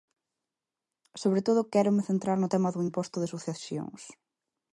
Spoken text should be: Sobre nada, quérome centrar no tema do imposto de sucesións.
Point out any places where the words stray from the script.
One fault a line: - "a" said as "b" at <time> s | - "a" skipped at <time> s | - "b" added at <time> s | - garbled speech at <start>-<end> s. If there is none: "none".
- "nada" said as "todo" at 1.5 s